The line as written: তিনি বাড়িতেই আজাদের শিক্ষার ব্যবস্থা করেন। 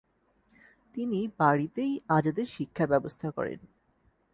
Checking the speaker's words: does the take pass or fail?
pass